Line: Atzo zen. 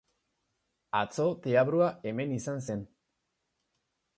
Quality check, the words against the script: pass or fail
fail